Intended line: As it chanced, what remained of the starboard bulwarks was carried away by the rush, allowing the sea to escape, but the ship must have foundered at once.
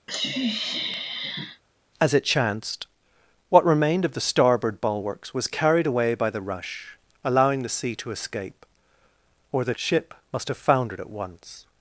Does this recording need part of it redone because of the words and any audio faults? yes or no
yes